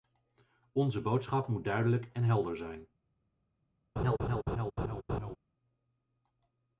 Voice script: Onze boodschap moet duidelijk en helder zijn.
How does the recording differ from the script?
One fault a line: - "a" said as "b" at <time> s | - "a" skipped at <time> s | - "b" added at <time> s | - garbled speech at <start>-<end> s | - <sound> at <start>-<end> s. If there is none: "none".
- laugh at 4.0-5.4 s